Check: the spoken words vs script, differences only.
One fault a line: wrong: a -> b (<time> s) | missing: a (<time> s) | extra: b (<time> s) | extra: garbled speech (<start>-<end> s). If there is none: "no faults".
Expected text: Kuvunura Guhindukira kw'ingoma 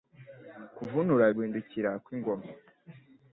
no faults